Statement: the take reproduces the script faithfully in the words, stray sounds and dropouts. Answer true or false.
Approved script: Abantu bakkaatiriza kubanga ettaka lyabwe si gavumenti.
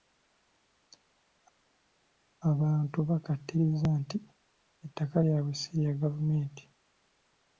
false